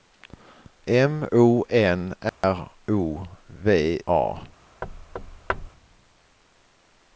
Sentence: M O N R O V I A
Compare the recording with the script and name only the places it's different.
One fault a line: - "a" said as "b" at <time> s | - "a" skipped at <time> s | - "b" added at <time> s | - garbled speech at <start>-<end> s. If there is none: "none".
- "I" skipped at 4.0 s